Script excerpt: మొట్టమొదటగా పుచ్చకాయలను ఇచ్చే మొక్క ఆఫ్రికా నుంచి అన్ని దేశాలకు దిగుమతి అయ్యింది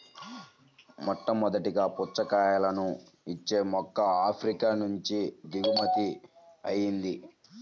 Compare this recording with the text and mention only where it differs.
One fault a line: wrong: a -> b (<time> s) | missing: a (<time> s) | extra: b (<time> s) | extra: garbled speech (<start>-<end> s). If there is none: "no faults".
missing: అన్ని దేశాలకు (5.2 s)